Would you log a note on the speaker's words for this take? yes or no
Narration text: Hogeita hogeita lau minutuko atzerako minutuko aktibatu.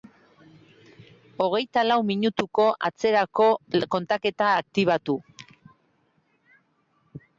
yes